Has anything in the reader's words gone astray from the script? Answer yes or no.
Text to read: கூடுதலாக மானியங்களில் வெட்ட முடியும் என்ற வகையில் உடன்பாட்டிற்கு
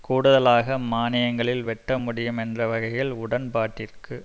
no